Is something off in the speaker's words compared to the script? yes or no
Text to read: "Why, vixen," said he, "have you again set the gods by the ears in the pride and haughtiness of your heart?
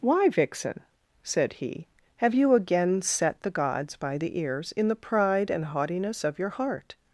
no